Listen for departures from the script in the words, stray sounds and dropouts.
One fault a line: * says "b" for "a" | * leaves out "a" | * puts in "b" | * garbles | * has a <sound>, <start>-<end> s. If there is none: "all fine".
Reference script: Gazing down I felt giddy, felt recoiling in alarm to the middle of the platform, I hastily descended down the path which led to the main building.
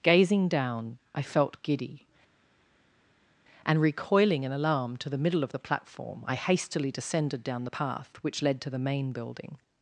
* says "and" for "felt"